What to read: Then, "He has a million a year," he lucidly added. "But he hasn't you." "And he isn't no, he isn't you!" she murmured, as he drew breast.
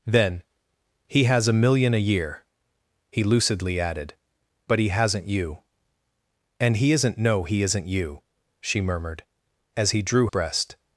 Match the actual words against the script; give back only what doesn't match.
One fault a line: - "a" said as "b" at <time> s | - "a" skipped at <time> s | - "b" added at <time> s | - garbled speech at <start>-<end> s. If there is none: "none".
none